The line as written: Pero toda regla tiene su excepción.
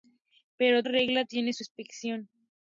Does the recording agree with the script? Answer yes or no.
no